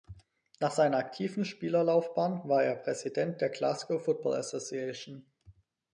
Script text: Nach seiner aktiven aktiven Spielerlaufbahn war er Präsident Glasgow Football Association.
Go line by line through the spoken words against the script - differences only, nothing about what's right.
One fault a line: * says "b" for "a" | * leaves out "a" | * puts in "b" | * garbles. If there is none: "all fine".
* leaves out "aktiven"
* puts in "der"